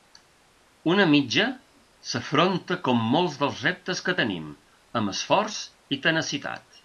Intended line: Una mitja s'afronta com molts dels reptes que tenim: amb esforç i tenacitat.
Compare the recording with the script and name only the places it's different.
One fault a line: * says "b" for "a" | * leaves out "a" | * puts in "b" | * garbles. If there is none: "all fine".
all fine